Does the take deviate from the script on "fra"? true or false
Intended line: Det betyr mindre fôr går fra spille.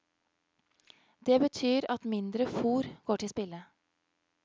true